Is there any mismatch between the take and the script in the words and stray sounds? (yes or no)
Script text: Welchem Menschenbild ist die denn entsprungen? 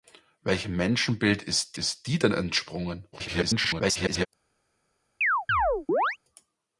yes